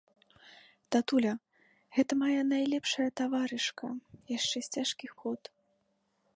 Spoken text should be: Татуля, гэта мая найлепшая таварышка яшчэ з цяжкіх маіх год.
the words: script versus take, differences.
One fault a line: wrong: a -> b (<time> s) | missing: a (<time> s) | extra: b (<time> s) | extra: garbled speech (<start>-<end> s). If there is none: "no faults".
missing: маіх (5.1 s)